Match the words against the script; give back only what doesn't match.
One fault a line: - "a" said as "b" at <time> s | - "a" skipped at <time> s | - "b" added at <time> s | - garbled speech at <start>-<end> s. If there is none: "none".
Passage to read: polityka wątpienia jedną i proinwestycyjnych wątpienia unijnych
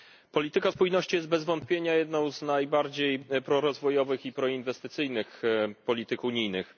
- "spójności jest bez" added at 0.7 s
- "z najbardziej prorozwojowych" added at 2.3 s
- "wątpienia" said as "polityk" at 5.8 s